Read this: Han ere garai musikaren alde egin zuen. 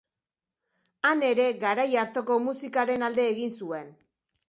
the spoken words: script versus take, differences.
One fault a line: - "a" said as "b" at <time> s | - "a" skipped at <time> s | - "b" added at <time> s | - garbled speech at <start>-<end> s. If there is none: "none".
- "hartako" added at 2.0 s